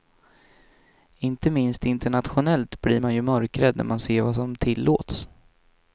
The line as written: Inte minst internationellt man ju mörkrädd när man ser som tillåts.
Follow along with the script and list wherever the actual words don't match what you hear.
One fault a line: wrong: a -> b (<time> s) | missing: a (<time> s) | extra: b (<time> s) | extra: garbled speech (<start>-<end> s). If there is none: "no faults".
extra: blir (2.8 s)
extra: vad (4.2 s)